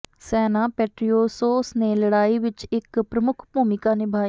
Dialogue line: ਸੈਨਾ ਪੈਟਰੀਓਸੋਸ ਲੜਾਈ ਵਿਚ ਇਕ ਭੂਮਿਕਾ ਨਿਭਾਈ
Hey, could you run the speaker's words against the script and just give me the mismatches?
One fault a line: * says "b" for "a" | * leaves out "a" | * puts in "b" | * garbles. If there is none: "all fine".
* puts in "ਨੇ"
* puts in "ਪ੍ਰਮੁੱਖ"